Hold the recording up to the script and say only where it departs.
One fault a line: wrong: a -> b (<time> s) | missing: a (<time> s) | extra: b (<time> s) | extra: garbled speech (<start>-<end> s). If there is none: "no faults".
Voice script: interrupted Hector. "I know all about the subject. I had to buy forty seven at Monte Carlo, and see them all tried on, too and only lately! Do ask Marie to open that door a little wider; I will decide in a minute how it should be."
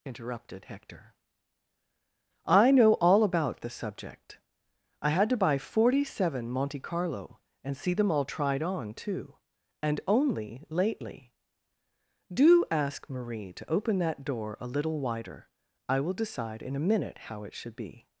missing: at (6.5 s)